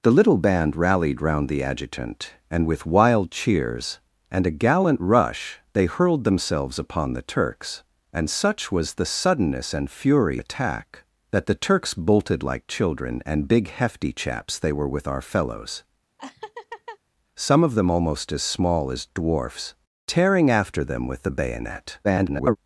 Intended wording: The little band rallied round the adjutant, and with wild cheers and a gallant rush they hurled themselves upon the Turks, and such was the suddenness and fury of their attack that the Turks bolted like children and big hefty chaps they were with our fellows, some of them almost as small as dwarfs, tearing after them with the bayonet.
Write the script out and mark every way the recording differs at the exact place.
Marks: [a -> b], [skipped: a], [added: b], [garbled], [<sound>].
The little band rallied round the adjutant, and with wild cheers and a gallant rush they hurled themselves upon the Turks, and such was the suddenness and fury [skipped: of their] attack that the Turks bolted like children and big hefty chaps they were with our fellows, [laugh] some of them almost as small as dwarfs, tearing after them with the bayonet. [garbled]